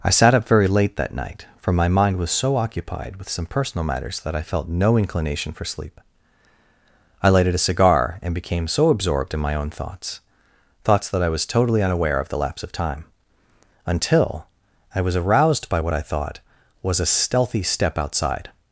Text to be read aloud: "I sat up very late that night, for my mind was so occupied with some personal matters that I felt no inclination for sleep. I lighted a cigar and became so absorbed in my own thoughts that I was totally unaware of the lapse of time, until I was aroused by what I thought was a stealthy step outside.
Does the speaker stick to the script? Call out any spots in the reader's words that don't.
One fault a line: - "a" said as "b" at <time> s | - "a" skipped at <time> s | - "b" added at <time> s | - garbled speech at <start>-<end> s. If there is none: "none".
- "thoughts" added at 10.8 s